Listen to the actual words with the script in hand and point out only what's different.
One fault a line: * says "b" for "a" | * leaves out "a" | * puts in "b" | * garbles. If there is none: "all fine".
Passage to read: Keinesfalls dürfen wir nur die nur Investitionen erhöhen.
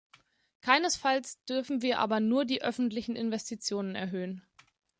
* puts in "aber"
* says "öffentlichen" for "nur"